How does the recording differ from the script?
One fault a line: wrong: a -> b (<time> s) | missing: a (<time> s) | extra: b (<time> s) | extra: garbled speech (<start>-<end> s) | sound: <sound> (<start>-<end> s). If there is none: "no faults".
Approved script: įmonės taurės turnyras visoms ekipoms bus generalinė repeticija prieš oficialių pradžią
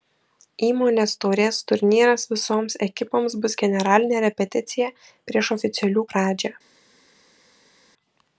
no faults